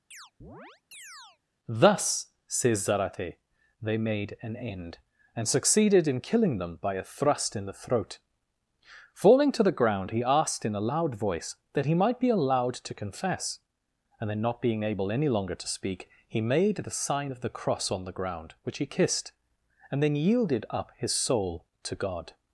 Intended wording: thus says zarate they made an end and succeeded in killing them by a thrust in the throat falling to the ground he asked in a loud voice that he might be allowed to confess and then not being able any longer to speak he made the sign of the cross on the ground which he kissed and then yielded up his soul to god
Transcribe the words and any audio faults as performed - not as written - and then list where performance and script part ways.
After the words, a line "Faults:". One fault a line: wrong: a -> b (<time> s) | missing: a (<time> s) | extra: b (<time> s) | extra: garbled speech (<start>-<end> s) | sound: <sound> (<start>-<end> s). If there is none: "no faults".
thus says zarate they made an end and succeeded in killing them by a thrust in the throat falling to the ground he asked in a loud voice that he might be allowed to confess and then not being able any longer to speak he made the sign of the cross on the ground which he kissed and then yielded up his soul to god
Faults:
sound: chirp (0.1-1.4 s)